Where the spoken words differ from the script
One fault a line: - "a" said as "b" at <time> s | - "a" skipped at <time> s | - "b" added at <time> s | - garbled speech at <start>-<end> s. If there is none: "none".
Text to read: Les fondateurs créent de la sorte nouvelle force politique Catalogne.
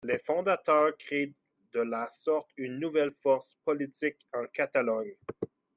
- "une" added at 2.6 s
- "en" added at 4.3 s